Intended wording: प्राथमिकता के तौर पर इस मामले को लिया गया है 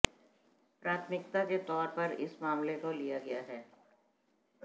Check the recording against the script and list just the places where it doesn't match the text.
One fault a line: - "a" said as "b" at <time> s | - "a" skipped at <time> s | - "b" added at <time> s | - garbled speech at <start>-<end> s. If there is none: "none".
none